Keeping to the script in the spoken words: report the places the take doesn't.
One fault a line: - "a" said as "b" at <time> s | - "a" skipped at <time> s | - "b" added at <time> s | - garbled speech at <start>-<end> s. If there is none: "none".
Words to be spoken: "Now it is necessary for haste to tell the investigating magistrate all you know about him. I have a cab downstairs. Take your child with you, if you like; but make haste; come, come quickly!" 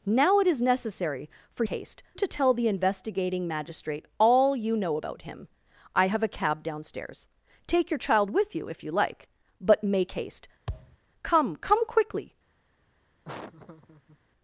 none